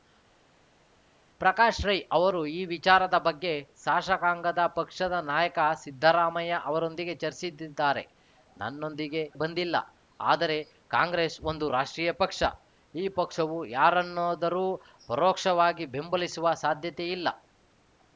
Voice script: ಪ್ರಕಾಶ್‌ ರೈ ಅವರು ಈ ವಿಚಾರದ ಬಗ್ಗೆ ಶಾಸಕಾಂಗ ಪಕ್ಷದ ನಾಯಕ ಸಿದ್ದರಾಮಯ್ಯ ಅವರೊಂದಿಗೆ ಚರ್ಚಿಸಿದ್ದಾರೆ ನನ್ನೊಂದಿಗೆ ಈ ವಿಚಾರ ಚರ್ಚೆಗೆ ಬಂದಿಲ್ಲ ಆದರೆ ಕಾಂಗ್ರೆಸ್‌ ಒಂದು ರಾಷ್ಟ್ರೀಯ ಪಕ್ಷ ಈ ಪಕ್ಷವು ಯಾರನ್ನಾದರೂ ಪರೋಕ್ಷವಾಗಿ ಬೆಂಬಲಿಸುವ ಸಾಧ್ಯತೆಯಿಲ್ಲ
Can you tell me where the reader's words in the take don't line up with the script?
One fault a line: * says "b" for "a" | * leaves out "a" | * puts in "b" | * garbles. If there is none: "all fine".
* leaves out "ಈ ವಿಚಾರ ಚರ್ಚೆಗೆ"